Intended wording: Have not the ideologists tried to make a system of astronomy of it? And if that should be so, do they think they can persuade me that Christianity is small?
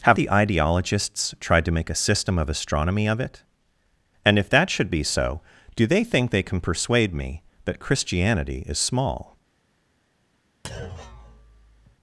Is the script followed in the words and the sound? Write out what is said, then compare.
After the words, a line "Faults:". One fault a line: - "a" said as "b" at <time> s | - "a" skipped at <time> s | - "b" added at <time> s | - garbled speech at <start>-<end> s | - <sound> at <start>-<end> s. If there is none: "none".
Have the ideologists tried to make a system of astronomy of it? And if that should be so, do they think they can persuade me that Christianity is small?
Faults:
- "not" skipped at 0.2 s
- thud at 10.6-12.0 s